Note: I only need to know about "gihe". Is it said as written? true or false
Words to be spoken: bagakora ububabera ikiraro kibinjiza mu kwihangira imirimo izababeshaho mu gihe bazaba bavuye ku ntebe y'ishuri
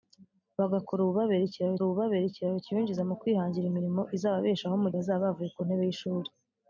false